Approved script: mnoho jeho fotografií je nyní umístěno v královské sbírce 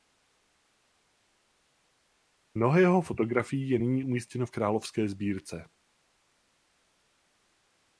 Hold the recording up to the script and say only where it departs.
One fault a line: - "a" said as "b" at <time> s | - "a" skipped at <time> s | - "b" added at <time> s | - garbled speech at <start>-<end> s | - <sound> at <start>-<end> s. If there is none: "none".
none